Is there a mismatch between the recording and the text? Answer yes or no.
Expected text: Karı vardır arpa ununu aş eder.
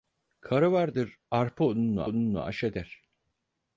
yes